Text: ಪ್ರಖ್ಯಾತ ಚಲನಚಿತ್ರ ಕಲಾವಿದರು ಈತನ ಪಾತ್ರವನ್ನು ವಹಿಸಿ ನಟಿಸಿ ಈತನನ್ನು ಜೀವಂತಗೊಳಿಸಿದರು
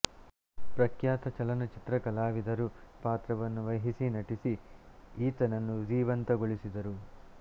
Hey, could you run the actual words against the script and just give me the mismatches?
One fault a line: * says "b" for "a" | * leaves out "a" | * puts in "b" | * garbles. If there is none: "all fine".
* leaves out "ಈತನ"